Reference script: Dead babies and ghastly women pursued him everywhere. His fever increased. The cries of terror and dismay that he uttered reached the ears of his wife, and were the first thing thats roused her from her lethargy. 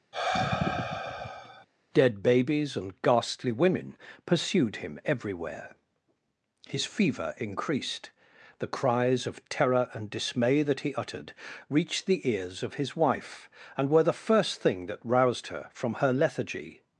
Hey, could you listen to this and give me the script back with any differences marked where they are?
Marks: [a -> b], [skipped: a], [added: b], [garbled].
Dead babies and ghastly women pursued him everywhere. His fever increased. The cries of terror and dismay that he uttered reached the ears of his wife, and were the first thing [thats -> that] roused her from her lethargy.